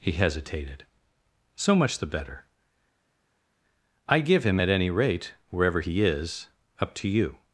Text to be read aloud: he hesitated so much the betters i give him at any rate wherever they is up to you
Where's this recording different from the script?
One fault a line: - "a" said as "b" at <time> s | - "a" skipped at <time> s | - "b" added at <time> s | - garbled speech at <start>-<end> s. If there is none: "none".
- "betters" said as "better" at 2.1 s
- "they" said as "he" at 5.8 s